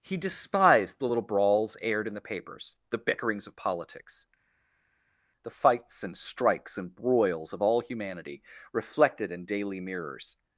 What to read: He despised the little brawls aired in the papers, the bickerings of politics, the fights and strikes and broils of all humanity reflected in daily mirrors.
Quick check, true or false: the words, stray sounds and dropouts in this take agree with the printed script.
true